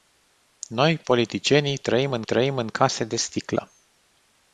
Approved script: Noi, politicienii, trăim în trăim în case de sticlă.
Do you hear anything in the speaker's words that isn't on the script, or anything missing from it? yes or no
no